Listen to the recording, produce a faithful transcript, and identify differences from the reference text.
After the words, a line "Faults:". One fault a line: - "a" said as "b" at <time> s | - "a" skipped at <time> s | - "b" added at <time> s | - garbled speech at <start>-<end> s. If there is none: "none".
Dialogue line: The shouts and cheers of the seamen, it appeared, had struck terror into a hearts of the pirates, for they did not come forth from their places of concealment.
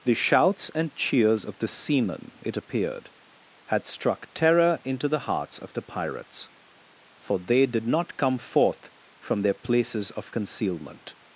The shouts and cheers of the seamen, it appeared, had struck terror into the hearts of the pirates, for they did not come forth from their places of concealment.
Faults:
- "a" said as "the" at 5.1 s